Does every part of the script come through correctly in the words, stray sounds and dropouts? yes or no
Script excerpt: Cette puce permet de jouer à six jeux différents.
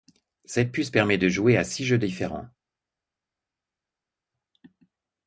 yes